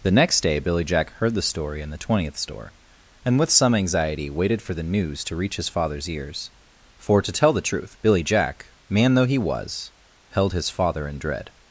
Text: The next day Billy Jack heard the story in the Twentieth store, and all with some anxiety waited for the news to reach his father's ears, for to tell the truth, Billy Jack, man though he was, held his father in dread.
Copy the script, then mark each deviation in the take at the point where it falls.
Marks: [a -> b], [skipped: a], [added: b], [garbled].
The next day Billy Jack heard the story in the Twentieth store, and [skipped: all] with some anxiety waited for the news to reach his father's ears, for to tell the truth, Billy Jack, man though he was, held his father in dread.